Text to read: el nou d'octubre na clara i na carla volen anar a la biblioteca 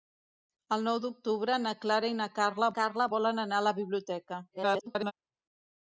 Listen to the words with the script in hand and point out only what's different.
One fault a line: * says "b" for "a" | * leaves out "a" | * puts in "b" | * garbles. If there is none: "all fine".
* puts in "carla"
* garbles